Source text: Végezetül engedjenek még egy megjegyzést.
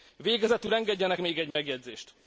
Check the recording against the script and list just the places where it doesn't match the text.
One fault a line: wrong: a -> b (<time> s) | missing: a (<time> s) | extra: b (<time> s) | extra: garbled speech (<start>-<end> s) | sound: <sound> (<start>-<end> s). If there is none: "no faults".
sound: dropout (1.5-1.6 s)